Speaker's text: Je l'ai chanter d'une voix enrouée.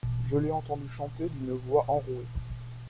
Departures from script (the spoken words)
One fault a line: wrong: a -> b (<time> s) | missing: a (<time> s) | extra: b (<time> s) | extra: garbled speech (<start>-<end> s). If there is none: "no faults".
extra: entendu (0.5 s)